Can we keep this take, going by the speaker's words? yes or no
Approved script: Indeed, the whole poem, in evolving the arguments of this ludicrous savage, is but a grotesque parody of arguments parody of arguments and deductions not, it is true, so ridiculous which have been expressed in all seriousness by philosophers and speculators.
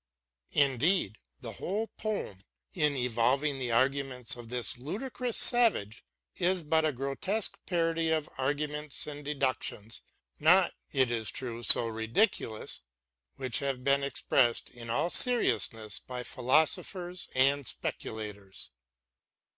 no